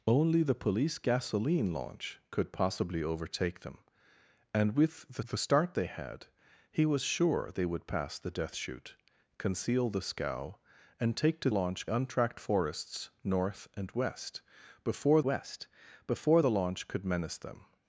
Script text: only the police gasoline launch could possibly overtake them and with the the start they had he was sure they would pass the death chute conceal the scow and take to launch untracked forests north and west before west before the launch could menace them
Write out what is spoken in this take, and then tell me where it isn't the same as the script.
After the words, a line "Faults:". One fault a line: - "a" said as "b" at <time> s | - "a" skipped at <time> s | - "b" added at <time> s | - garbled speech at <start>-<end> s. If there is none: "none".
only the police gasoline launch could possibly overtake them and with the the start they had he was sure they would pass the death chute conceal the scow and take to launch untracked forests north and west before west before the launch could menace them
Faults:
none